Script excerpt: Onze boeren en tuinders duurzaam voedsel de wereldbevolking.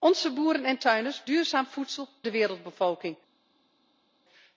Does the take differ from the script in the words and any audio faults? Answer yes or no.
no